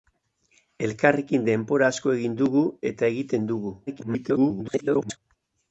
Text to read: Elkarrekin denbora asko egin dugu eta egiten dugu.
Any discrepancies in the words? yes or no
yes